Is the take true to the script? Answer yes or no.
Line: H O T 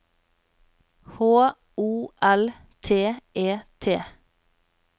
no